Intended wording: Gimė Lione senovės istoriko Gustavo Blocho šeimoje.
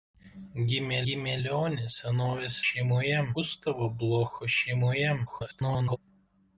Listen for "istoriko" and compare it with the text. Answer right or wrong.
wrong